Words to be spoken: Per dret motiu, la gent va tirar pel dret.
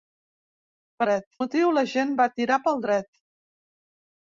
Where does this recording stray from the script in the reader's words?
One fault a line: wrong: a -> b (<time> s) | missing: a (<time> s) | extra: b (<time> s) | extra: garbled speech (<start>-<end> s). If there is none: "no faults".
no faults